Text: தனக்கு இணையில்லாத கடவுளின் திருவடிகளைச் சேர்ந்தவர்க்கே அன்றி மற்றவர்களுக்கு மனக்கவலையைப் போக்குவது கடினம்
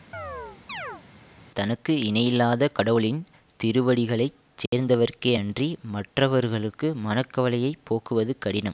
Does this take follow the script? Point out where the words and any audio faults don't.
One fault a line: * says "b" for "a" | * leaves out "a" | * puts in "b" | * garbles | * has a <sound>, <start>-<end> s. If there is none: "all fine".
* has a chirp, 0.1-1.0 s
* has a dropout, 4.7-4.7 s